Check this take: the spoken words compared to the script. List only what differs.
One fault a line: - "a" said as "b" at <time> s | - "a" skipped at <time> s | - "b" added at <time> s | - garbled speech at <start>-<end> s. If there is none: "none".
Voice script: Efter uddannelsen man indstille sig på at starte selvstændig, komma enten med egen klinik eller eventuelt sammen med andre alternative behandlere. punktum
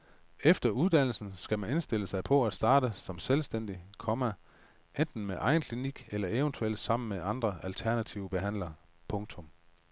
- "skal" added at 1.4 s
- "som" added at 3.0 s